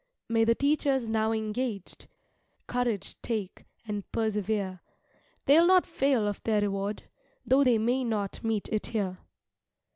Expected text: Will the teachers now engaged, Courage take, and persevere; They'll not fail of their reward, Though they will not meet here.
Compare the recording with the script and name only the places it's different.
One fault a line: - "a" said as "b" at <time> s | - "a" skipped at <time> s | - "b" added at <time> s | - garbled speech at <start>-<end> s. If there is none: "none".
- "Will" said as "May" at 0.3 s
- "will" said as "may" at 7.8 s
- "it" added at 8.7 s